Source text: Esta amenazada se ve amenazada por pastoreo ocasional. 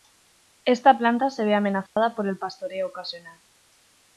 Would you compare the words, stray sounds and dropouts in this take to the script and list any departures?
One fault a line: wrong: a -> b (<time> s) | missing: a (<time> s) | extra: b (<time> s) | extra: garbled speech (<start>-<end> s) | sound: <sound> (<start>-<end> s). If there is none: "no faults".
wrong: amenazada -> planta (1.0 s)
sound: dropout (1.9-2.0 s)
extra: el (2.3 s)